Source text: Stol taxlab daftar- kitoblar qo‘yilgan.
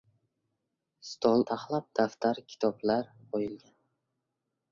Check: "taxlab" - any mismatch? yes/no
no